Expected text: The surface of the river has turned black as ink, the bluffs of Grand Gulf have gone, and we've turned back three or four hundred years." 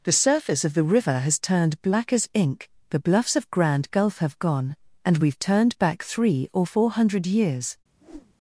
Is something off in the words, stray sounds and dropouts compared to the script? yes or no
yes